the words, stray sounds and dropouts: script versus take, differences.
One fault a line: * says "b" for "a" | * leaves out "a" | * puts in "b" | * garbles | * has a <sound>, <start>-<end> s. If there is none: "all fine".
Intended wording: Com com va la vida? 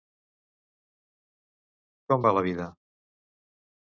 * leaves out "com"